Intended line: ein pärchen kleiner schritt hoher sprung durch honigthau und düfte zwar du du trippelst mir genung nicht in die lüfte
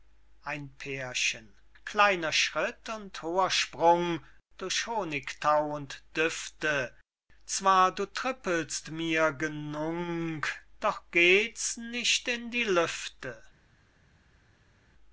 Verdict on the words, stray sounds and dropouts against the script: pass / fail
fail